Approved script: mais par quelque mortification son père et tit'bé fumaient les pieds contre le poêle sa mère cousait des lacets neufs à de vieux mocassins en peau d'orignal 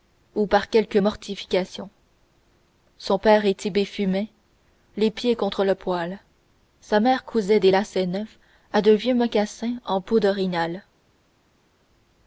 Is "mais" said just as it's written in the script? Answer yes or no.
no